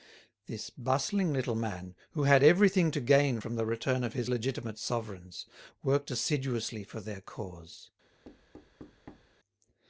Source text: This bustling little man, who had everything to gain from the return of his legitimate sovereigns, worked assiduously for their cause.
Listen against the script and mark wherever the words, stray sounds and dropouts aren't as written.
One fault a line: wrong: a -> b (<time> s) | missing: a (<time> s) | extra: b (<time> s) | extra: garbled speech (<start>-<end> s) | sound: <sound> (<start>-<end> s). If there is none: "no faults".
sound: thud (8.2-9.3 s)